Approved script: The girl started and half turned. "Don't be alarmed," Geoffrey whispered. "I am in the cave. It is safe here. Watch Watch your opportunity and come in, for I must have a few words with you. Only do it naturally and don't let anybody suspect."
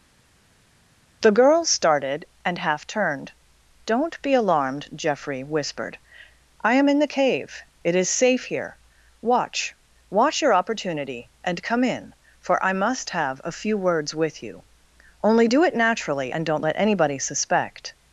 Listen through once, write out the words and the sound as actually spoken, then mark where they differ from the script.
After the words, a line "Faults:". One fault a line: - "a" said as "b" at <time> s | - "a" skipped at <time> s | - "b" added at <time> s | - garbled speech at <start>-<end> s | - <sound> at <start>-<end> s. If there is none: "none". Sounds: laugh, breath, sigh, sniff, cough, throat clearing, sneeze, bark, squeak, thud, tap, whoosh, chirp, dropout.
The girl started and half turned. "Don't be alarmed," Geoffrey whispered. "I am in the cave. It is safe here. Watch Watch your opportunity and come in, for I must have a few words with you. Only do it naturally and don't let anybody suspect."
Faults:
none